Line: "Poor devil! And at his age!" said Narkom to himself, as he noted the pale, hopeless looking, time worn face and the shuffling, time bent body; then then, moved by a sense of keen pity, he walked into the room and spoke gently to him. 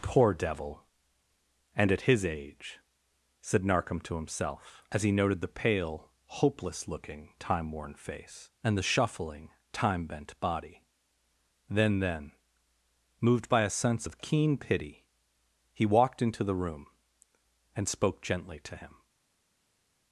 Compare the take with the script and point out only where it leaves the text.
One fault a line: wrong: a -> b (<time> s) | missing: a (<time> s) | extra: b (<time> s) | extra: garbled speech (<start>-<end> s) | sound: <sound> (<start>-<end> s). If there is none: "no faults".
no faults